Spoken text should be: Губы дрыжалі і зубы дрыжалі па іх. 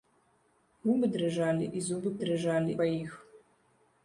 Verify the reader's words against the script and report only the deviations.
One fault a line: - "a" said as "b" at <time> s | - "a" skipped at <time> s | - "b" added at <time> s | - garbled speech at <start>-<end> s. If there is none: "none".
none